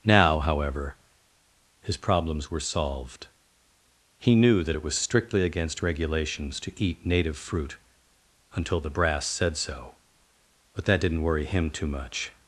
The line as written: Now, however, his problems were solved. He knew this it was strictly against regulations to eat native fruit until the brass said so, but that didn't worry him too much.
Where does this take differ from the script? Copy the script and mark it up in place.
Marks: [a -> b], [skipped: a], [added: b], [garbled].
Now, however, his problems were solved. He knew [this -> that] it was strictly against regulations to eat native fruit until the brass said so, but that didn't worry him too much.